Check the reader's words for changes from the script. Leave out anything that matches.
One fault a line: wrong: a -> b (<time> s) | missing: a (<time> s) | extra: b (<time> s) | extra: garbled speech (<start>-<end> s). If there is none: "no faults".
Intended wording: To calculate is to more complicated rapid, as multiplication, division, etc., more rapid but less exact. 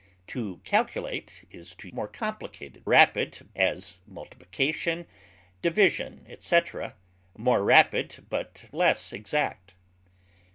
no faults